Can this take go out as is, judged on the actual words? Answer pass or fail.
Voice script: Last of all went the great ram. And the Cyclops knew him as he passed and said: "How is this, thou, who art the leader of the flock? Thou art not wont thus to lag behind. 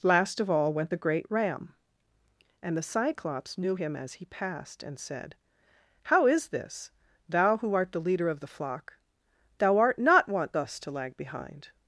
pass